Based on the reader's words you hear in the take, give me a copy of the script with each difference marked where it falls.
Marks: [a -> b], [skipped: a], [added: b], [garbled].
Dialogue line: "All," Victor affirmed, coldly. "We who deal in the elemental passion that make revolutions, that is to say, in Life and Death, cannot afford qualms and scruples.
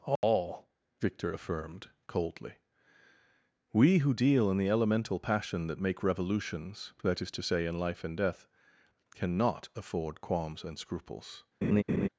"All," Victor affirmed, coldly. "We who deal in the elemental passion that make revolutions, that is to say, in Life and Death, cannot afford qualms and scruples.